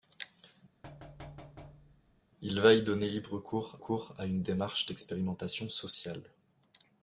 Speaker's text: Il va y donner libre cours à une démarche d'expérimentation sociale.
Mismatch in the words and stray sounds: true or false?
true